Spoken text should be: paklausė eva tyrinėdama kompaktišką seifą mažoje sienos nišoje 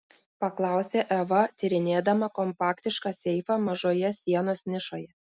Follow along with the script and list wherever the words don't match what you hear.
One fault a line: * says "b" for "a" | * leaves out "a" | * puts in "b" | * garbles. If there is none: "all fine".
all fine